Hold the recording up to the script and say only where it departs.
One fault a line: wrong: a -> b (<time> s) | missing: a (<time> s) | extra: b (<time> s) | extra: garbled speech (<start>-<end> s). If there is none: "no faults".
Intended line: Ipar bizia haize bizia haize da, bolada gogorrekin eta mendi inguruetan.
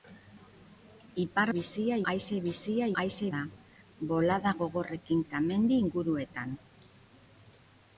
no faults